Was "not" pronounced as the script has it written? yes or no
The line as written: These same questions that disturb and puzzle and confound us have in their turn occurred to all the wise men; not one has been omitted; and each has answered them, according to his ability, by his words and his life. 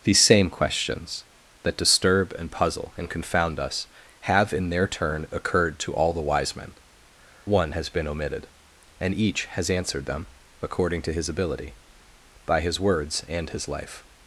no